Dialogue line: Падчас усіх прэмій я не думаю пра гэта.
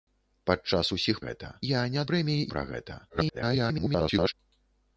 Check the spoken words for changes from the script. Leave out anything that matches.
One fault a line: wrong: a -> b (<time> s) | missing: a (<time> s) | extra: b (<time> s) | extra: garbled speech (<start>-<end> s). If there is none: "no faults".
wrong: прэмій -> гэта (1.3 s)
wrong: думаю -> прэмій (2.1 s)
extra: garbled speech (3.1-4.3 s)